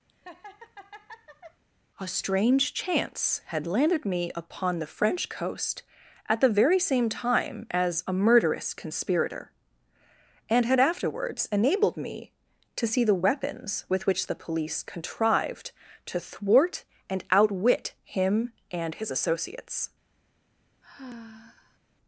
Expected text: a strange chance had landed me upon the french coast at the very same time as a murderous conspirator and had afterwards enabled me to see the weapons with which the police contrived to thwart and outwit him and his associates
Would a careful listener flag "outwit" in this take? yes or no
no